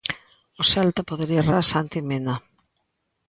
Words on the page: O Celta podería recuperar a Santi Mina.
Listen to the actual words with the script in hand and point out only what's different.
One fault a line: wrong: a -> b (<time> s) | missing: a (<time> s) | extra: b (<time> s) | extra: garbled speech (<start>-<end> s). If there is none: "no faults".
missing: recuperar (1.5 s)